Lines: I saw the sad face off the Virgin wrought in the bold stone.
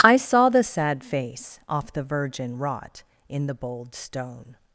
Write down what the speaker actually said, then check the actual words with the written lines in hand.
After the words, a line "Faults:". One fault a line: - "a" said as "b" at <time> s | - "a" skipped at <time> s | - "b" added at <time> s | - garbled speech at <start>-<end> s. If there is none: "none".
I saw the sad face off the Virgin wrought in the bold stone.
Faults:
none